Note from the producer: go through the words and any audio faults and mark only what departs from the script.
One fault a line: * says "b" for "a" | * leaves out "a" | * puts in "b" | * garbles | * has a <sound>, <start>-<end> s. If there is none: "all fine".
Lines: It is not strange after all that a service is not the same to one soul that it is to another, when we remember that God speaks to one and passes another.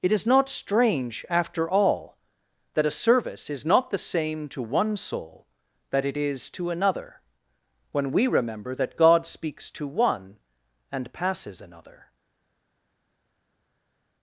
all fine